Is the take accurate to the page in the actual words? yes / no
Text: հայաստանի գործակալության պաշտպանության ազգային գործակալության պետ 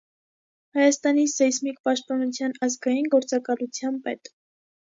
no